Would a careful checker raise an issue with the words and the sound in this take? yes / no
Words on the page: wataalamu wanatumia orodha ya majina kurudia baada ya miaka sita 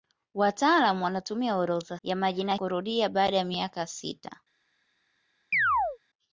yes